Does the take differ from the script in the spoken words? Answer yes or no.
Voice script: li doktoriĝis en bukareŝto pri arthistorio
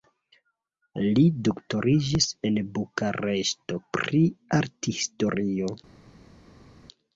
no